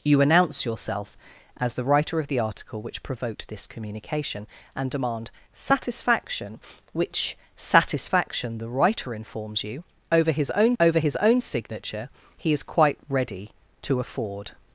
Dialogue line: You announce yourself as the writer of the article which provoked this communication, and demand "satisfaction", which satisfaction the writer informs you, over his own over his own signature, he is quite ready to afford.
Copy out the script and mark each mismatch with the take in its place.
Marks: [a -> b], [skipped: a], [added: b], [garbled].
You announce yourself as the writer of the article which provoked this communication, and demand "satisfaction", which satisfaction the writer informs you, over his own over his own signature, he is quite ready to afford.